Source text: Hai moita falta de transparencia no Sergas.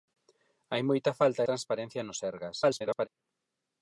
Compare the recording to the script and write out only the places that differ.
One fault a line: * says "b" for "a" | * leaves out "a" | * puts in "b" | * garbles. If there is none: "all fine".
* leaves out "de"
* garbles